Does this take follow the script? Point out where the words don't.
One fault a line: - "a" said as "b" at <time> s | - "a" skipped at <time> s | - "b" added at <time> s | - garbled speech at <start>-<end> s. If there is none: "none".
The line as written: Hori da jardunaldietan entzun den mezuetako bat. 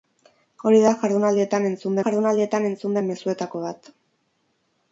- "jardunaldietan entzun" added at 2.0 s